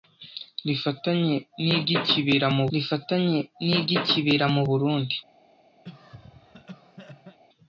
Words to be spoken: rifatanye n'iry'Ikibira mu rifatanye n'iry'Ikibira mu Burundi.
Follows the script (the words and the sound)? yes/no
no